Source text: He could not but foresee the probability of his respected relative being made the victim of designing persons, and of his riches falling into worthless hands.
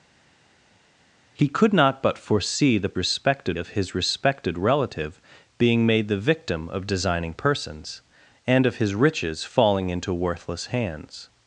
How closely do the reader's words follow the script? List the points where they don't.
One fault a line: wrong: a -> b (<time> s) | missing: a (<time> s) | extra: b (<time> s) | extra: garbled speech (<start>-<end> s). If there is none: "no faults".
wrong: probability -> respected (2.9 s)